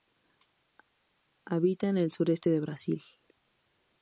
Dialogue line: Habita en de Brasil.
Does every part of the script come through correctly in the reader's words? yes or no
no